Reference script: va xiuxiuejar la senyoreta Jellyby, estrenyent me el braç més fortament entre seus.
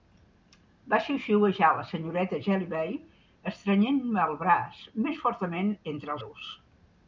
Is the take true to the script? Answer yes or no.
yes